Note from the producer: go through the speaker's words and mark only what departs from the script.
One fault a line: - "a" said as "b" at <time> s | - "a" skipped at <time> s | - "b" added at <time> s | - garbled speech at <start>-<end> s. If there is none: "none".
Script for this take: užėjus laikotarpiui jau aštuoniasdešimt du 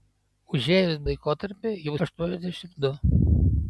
none